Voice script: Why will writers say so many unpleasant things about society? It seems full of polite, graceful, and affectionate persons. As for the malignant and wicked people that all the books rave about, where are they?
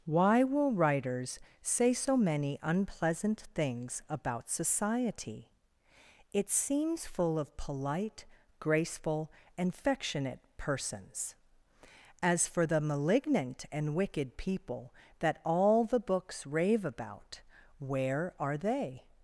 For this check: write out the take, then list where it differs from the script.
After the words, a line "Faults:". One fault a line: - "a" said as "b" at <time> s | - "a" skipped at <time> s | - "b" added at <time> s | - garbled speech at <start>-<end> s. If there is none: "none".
Why will writers say so many unpleasant things about society? It seems full of polite, graceful, and affectionate persons. As for the malignant and wicked people that all the books rave about, where are they?
Faults:
none